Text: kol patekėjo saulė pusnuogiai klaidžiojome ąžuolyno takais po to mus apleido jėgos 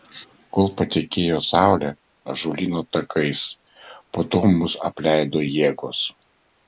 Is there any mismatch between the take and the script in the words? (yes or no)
yes